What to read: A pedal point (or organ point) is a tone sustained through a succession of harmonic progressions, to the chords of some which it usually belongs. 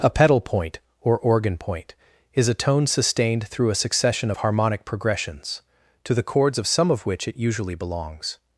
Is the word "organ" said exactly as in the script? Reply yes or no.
yes